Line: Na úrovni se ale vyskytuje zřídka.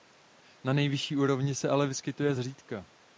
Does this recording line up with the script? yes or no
no